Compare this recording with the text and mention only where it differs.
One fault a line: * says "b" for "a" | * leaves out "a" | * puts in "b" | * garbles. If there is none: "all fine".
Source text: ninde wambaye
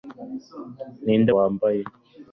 all fine